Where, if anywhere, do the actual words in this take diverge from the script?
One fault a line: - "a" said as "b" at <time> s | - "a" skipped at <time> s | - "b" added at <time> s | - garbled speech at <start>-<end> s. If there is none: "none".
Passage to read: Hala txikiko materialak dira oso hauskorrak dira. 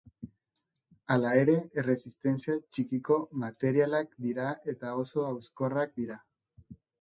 - "ere erresistentzia" added at 1.4 s
- "eta" added at 4.8 s